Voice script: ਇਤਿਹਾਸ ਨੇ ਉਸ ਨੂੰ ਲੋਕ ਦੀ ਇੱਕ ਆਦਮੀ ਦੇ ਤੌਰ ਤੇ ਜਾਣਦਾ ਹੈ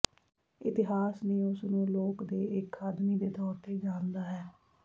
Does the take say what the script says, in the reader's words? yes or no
no